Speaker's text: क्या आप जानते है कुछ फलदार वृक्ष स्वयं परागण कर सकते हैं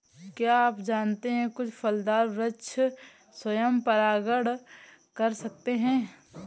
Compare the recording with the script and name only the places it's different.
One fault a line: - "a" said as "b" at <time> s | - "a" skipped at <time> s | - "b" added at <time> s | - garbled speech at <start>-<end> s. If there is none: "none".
none